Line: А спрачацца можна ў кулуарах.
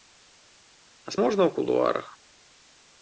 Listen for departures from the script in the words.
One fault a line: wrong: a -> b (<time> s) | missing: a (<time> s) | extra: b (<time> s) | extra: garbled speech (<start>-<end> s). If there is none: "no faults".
missing: спрачацца (1.1 s)